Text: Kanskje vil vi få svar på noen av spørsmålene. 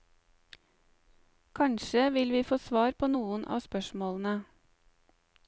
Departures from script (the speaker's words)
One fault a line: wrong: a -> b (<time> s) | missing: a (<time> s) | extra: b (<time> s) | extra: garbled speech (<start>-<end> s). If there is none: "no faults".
no faults